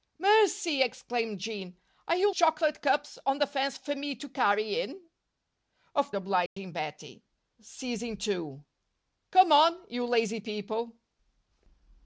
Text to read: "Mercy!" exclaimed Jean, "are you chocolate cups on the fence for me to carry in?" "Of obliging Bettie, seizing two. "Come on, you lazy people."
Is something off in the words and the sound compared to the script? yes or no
yes